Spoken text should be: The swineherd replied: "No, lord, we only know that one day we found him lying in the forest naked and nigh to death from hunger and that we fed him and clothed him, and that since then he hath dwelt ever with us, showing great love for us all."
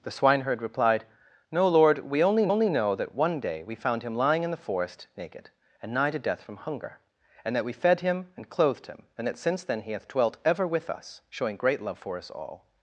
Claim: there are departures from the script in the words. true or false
true